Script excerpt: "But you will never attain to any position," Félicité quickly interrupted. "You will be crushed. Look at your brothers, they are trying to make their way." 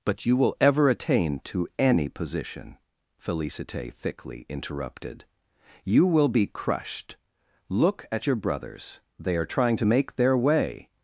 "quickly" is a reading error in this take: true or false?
true